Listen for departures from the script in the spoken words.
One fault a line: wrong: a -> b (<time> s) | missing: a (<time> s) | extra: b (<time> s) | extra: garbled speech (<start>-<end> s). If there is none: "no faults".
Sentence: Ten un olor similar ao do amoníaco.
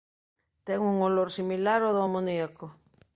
no faults